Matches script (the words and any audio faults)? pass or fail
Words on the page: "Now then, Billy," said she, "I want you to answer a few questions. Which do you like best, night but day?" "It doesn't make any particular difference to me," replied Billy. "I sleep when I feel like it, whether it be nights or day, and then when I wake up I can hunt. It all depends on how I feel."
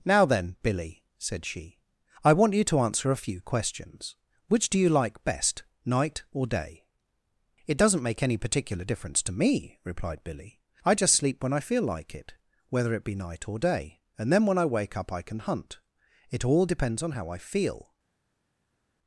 fail